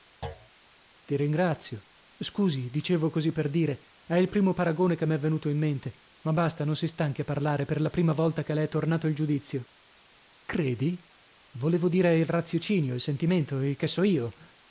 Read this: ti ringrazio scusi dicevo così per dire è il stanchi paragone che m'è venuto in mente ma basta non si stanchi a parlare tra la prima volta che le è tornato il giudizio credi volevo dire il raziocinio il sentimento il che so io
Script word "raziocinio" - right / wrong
right